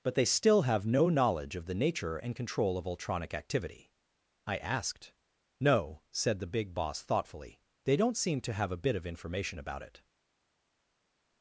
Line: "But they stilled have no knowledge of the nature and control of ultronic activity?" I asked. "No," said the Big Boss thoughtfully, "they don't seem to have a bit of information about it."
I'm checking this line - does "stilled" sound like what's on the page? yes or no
no